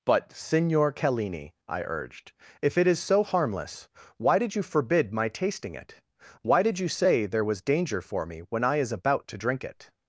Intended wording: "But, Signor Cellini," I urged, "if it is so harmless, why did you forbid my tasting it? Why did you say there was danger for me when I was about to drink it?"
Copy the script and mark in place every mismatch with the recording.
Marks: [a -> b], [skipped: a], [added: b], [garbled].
"But, Signor Cellini," I urged, "if it is so harmless, why did you forbid my tasting it? Why did you say there was danger for me when I [was -> is] about to drink it?"